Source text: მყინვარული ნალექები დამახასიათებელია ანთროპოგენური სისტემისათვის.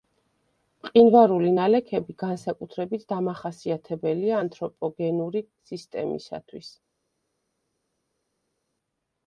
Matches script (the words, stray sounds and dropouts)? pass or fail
fail